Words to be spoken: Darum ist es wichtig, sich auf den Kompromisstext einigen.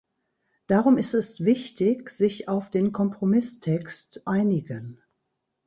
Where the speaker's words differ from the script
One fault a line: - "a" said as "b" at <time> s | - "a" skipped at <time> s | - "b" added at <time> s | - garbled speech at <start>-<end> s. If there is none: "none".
none